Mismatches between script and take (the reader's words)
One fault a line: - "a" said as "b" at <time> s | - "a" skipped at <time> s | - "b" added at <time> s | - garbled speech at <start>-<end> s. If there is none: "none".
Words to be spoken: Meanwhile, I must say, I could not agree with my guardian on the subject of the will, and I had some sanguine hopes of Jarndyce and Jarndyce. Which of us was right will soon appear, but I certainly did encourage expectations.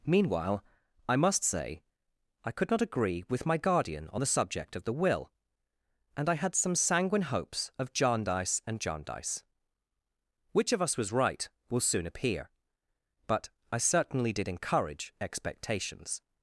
none